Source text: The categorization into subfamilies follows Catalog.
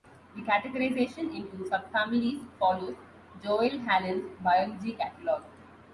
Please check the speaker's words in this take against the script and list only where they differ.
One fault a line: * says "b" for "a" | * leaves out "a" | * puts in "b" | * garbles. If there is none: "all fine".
* puts in "Joel Hallan's Biology"